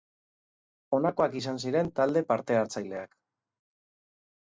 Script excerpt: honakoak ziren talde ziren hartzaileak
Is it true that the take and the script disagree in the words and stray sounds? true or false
true